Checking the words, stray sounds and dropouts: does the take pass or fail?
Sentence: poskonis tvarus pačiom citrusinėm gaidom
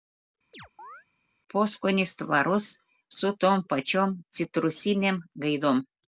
fail